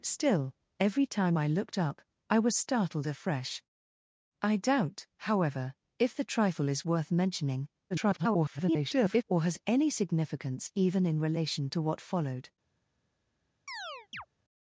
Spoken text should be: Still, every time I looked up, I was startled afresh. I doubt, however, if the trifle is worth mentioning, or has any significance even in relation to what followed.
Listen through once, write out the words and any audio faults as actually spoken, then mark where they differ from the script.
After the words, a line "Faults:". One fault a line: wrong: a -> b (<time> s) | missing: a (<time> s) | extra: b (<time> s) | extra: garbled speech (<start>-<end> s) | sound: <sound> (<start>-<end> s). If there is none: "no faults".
Still, every time I looked up, I was startled afresh. I doubt, however, if the trifle is worth mentioning, [garbled] or has any significance even in relation to what followed.
Faults:
extra: garbled speech (7.9-9.2 s)
sound: chirp (13.7-14.3 s)